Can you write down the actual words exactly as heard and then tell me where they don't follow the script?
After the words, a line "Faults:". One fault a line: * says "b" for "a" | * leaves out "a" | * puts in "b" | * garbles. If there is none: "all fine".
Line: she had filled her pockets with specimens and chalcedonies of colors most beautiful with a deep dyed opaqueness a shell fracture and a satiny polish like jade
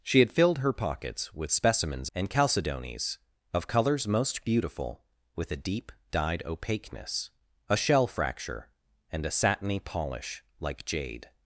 she had filled her pockets with specimens and chalcedonies of colors most beautiful with a deep dyed opaqueness a shell fracture and a satiny polish like jade
Faults:
all fine